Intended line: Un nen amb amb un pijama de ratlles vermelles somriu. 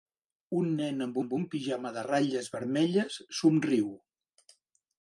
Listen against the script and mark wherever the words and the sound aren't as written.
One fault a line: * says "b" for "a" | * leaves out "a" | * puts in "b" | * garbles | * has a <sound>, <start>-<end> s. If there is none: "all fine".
all fine